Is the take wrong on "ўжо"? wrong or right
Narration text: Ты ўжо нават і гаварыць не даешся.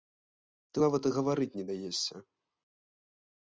wrong